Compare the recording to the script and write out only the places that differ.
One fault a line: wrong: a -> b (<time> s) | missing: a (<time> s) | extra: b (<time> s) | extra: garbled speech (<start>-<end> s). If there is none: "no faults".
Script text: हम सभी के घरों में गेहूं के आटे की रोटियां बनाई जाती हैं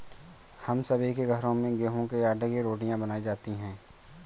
no faults